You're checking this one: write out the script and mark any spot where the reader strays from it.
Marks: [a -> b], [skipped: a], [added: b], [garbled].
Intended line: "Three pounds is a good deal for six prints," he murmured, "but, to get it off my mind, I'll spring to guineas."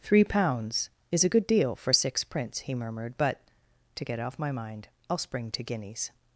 "Three pounds is a good deal for six prints," he murmured, "but, to get [skipped: it] off my mind, I'll spring to guineas."